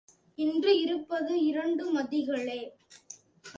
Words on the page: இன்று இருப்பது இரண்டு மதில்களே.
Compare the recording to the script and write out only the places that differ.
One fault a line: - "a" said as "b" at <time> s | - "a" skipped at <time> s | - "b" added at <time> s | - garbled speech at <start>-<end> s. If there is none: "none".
none